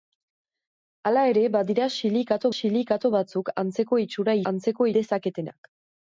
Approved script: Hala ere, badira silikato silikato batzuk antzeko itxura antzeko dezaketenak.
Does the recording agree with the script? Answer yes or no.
yes